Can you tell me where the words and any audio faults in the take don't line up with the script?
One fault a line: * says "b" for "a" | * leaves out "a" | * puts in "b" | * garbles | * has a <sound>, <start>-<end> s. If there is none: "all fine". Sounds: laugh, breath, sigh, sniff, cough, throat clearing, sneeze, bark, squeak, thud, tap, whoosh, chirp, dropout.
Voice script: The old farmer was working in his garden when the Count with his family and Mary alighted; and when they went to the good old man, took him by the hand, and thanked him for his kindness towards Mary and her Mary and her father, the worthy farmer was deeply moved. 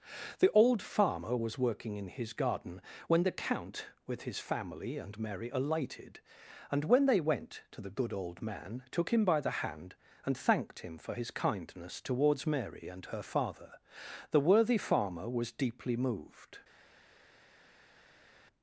* leaves out "Mary and her"